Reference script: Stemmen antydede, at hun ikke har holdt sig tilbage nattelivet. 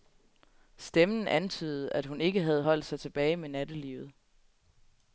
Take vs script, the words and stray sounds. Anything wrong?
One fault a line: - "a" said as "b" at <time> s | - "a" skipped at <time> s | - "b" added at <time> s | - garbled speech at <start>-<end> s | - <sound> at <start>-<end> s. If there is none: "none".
- "har" said as "havde" at 2.4 s
- "med" added at 3.4 s